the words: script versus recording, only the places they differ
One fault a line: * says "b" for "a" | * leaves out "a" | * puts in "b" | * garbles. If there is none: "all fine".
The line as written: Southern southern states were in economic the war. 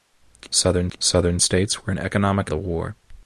all fine